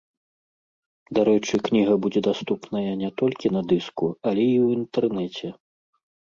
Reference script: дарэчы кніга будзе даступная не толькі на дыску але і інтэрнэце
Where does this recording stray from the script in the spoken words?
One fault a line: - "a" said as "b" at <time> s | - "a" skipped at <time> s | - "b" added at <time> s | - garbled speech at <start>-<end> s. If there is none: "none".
- "ў" added at 4.6 s